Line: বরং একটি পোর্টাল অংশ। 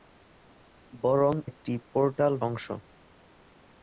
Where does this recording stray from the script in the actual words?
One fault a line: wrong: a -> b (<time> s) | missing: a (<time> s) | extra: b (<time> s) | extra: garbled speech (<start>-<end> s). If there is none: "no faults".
no faults